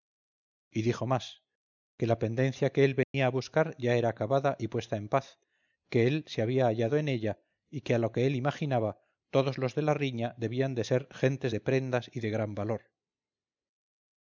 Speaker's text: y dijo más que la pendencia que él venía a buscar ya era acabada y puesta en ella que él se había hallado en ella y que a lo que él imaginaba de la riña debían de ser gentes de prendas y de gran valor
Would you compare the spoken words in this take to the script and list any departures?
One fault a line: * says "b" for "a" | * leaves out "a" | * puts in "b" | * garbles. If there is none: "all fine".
* says "paz" for "ella"
* puts in "todos los"